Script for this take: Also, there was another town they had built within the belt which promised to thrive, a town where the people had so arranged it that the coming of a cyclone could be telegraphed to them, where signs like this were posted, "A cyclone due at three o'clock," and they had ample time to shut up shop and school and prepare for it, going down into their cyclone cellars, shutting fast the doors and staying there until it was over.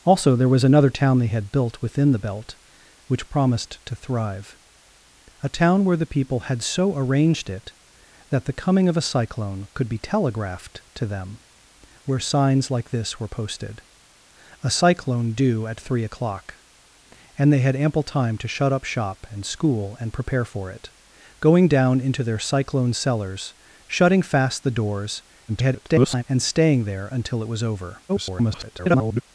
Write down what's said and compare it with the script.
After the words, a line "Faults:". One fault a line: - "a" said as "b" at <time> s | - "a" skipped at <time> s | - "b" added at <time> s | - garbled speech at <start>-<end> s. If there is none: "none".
Also, there was another town they had built within the belt which promised to thrive, a town where the people had so arranged it that the coming of a cyclone could be telegraphed to them, where signs like this were posted, "A cyclone due at three o'clock," and they had ample time to shut up shop and school and prepare for it, going down into their cyclone cellars, shutting fast the doors [garbled] and staying there until it was over. [garbled]
Faults:
- garbled speech at 25.5-26.2 s
- garbled speech at 28.1-29.2 s